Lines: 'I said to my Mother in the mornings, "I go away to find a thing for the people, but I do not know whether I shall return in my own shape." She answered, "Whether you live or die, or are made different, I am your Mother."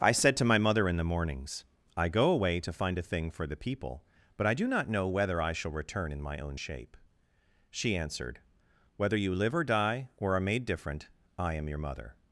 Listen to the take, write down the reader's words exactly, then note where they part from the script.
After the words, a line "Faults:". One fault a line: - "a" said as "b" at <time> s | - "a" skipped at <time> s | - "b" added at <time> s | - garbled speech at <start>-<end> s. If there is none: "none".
'I said to my Mother in the mornings, "I go away to find a thing for the people, but I do not know whether I shall return in my own shape." She answered, "Whether you live or die, or are made different, I am your Mother."
Faults:
none